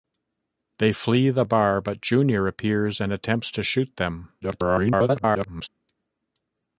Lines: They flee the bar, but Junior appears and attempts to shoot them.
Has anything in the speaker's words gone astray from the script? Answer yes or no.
yes